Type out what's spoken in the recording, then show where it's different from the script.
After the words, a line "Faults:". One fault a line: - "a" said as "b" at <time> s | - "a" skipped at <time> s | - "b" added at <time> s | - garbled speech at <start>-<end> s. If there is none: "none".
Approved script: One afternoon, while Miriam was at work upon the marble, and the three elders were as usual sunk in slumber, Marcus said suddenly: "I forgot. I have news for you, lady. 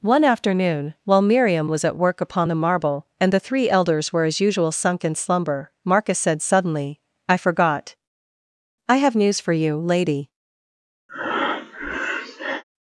One afternoon, while Miriam was at work upon the marble, and the three elders were as usual sunk in slumber, Marcus said suddenly: "I forgot. I have news for you, lady.
Faults:
none